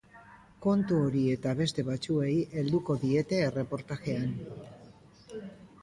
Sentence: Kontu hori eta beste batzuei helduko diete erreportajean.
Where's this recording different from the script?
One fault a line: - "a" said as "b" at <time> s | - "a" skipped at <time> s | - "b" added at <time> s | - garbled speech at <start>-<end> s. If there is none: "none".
none